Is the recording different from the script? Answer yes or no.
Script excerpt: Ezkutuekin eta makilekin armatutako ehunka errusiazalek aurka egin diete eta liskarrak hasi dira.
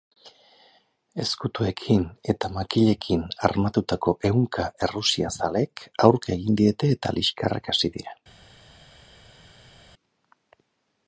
no